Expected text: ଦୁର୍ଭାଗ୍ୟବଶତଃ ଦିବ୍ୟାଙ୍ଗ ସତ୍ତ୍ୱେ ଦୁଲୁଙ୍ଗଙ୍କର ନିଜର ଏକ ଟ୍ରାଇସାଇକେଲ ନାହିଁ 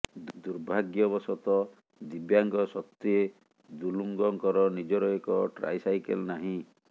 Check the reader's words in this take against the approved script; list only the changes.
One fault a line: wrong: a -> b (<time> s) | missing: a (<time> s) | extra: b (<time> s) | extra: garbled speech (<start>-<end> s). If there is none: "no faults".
no faults